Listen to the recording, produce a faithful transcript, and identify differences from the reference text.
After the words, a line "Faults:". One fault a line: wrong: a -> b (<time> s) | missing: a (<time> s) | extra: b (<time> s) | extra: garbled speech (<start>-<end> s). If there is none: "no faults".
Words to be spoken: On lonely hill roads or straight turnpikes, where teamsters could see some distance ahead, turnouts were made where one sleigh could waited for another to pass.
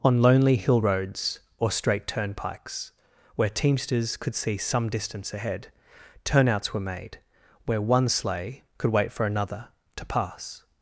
On lonely hill roads or straight turnpikes, where teamsters could see some distance ahead, turnouts were made where one sleigh could wait for another to pass.
Faults:
wrong: waited -> wait (8.9 s)